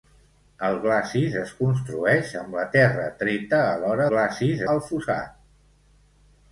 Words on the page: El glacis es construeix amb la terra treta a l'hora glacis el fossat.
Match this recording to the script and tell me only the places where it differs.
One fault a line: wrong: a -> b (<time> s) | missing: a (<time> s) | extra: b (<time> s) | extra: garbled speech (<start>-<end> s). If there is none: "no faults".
no faults